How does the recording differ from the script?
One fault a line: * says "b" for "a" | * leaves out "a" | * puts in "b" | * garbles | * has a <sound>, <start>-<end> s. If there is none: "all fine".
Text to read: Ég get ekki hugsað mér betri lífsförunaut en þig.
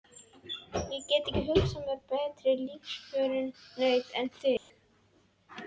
* has a dropout, 4.6-4.7 s